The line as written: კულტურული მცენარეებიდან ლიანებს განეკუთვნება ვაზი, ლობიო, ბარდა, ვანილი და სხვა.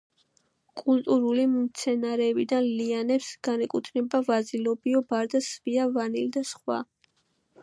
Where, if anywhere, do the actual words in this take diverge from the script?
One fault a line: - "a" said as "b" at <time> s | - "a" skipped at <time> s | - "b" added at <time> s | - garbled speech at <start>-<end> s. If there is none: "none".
- "სვია" added at 5.5 s